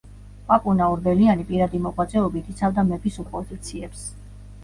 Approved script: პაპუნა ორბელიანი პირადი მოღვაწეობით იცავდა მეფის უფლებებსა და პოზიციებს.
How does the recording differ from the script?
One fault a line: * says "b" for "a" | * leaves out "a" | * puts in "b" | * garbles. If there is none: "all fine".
* leaves out "უფლებებსა"